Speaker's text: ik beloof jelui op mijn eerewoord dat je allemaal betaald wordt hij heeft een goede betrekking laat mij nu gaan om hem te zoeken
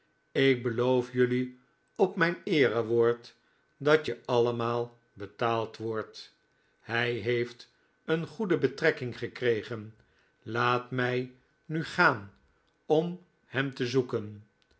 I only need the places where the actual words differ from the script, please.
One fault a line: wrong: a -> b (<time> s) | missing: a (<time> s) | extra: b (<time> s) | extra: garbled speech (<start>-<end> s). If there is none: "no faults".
extra: gekregen (9.2 s)